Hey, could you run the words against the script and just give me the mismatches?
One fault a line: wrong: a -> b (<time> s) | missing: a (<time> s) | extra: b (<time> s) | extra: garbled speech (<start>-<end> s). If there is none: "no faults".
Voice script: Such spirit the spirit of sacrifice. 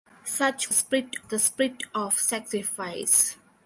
no faults